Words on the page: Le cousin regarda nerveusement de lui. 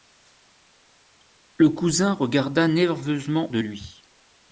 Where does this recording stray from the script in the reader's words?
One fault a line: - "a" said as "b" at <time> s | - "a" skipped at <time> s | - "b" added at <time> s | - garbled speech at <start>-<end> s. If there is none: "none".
none